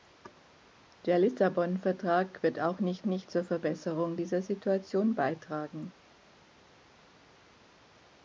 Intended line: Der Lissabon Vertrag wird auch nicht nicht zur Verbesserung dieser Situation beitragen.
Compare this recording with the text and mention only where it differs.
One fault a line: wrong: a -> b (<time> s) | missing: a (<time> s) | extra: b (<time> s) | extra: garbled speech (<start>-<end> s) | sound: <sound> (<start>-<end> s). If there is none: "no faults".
no faults